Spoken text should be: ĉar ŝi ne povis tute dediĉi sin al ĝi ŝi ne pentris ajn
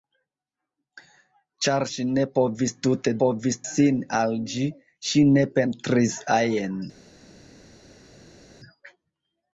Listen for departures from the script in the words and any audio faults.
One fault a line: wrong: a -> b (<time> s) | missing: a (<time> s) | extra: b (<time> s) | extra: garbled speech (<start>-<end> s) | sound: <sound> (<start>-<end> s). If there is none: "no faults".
wrong: dediĉi -> povis (3.2 s)